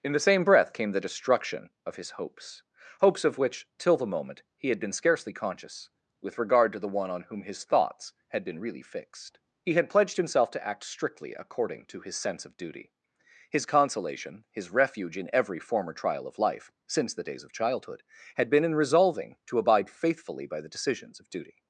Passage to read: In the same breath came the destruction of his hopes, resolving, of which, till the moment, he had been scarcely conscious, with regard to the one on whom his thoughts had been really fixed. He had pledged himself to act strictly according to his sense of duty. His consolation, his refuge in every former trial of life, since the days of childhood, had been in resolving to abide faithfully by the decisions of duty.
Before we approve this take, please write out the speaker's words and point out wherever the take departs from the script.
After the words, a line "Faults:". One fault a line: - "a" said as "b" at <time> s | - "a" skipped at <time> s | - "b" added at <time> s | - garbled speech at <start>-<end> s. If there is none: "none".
In the same breath came the destruction of his hopes, hopes, of which, till the moment, he had been scarcely conscious, with regard to the one on whom his thoughts had been really fixed. He had pledged himself to act strictly according to his sense of duty. His consolation, his refuge in every former trial of life, since the days of childhood, had been in resolving to abide faithfully by the decisions of duty.
Faults:
- "resolving" said as "hopes" at 3.0 s